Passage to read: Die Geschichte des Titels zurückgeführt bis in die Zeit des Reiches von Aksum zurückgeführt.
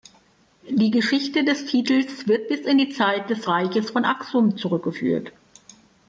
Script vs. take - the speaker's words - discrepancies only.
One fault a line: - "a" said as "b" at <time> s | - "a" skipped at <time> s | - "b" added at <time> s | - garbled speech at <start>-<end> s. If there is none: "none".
- "zurückgeführt" said as "wird" at 2.3 s